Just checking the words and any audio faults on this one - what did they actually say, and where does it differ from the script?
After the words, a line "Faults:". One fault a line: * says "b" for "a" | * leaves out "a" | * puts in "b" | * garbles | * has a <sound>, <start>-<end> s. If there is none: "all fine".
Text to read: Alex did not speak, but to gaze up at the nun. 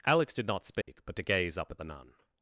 Alex did not speak, but to gaze up at the nun.
Faults:
* has a dropout, 0.8-0.9 s